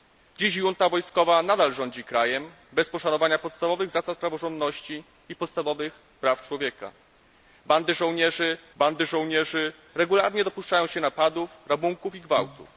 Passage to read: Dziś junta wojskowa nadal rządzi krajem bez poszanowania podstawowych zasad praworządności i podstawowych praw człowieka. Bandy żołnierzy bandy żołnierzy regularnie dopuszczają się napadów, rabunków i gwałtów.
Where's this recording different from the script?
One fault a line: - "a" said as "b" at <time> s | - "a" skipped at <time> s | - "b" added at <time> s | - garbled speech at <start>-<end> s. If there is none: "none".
none